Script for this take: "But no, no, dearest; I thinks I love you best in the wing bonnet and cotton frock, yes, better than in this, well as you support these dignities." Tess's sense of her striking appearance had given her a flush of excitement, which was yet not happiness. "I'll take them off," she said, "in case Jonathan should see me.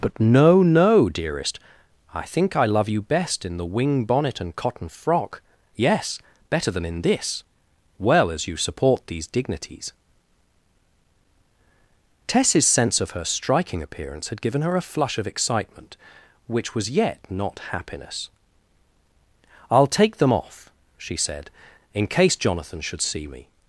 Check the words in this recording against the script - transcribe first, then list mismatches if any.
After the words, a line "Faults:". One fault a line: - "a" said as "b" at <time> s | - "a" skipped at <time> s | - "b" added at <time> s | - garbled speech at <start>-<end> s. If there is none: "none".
"But no, no, dearest; I think I love you best in the wing bonnet and cotton frock, yes, better than in this, well as you support these dignities." Tess's sense of her striking appearance had given her a flush of excitement, which was yet not happiness. "I'll take them off," she said, "in case Jonathan should see me.
Faults:
- "thinks" said as "think" at 2.2 s